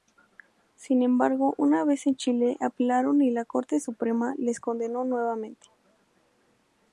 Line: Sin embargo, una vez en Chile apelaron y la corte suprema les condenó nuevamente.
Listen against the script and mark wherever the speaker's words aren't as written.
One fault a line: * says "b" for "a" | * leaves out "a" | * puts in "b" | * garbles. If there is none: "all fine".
all fine